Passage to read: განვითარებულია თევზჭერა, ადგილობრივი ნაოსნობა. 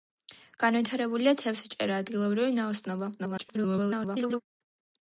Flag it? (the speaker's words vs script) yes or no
yes